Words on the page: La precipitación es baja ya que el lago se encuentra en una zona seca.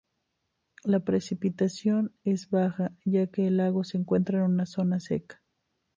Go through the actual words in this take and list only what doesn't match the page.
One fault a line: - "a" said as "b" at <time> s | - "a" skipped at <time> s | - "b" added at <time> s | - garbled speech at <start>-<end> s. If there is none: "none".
none